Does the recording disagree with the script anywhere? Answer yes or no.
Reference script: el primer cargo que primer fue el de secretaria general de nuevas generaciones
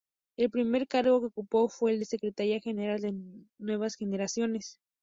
yes